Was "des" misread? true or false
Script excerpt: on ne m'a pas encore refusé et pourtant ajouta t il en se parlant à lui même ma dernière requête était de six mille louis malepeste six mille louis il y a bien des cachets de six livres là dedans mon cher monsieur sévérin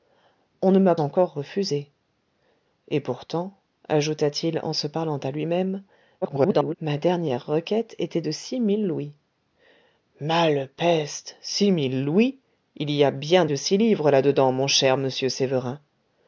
true